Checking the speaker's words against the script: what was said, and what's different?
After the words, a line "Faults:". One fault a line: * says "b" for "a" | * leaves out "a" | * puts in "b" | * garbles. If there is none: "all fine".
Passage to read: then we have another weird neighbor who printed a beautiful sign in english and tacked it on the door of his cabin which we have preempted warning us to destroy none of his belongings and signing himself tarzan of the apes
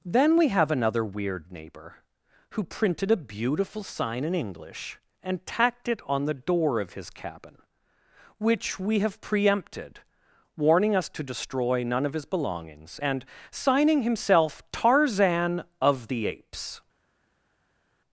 then we have another weird neighbor who printed a beautiful sign in english and tacked it on the door of his cabin which we have preempted warning us to destroy none of his belongings and signing himself tarzan of the apes
Faults:
all fine